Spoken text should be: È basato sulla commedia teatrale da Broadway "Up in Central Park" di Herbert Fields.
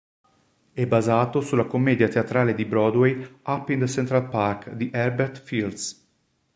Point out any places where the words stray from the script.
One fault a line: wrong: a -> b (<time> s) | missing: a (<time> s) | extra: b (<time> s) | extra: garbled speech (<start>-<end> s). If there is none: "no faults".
wrong: da -> di (2.5 s)